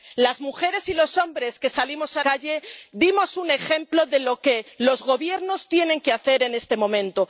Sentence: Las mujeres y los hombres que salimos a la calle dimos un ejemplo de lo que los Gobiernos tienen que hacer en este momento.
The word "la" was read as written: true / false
false